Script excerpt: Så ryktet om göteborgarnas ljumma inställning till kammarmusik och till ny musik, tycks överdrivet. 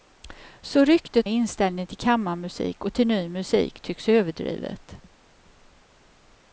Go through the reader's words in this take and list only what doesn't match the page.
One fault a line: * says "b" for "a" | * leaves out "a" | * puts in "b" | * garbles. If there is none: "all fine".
* leaves out "om göteborgarnas ljumma"